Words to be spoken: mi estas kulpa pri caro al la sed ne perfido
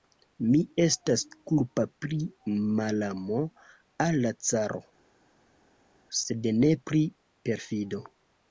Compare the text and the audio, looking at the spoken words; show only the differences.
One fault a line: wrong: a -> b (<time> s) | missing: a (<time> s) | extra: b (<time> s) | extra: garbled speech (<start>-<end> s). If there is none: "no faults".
wrong: caro -> malamo (2.8 s)
extra: caro (4.5 s)
extra: pri (6.9 s)